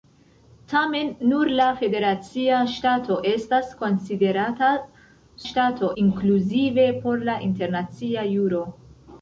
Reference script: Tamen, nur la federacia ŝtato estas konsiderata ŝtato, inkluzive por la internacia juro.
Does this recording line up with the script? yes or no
yes